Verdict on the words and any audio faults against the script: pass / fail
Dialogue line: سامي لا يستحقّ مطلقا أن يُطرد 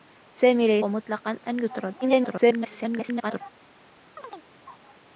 fail